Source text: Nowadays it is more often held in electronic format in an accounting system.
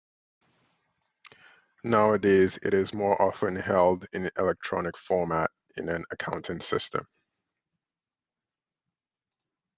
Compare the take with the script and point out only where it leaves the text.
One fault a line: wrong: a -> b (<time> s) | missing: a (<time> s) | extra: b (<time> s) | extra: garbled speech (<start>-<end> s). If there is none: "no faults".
no faults